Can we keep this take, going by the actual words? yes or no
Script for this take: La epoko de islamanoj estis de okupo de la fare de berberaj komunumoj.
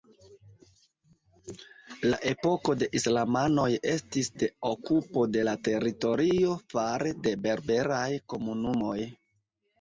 no